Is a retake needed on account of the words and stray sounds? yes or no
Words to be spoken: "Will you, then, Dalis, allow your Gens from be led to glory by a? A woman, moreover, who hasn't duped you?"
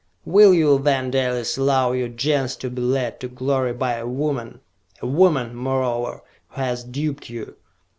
yes